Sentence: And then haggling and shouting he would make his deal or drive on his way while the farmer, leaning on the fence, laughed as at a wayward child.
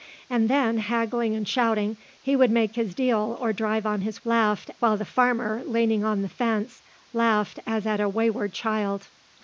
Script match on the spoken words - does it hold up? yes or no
no